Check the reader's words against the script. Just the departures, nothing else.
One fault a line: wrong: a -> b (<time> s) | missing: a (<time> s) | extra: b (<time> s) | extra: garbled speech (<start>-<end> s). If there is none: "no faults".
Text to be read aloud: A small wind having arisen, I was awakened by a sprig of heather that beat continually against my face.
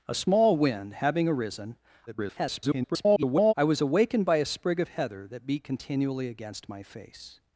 extra: garbled speech (2.1-3.5 s)